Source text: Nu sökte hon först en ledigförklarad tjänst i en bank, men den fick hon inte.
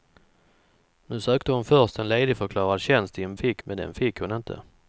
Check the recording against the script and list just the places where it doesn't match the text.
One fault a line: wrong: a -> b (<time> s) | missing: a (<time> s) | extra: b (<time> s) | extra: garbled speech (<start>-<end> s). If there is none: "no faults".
wrong: bank -> fick (3.4 s)